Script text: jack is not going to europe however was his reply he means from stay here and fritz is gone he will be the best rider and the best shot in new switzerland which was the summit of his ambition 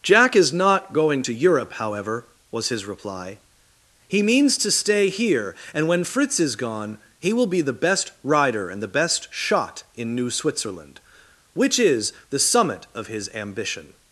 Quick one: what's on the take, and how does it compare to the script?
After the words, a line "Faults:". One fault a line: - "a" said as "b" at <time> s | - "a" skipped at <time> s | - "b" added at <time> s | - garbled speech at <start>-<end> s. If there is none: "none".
jack is not going to europe however was his reply he means to stay here and when fritz is gone he will be the best rider and the best shot in new switzerland which is the summit of his ambition
Faults:
- "from" said as "to" at 4.6 s
- "when" added at 5.9 s
- "was" said as "is" at 11.8 s